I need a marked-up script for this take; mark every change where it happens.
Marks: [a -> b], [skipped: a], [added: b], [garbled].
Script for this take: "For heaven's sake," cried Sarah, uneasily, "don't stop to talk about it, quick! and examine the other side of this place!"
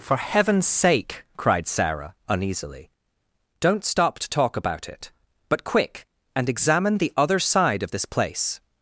"For heaven's sake," cried Sarah, uneasily, "don't stop to talk about it, [added: but] quick! and examine the other side of this place!"